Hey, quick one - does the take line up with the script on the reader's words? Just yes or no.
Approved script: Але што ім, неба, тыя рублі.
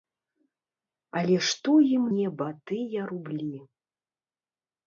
yes